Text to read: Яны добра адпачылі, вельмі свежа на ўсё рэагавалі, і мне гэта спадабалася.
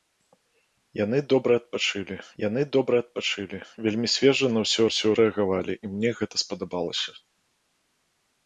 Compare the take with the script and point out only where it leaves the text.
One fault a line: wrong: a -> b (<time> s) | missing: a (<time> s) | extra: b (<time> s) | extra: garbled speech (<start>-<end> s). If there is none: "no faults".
extra: яны добра адпачылі (2.4 s)
extra: ўсё (4.9 s)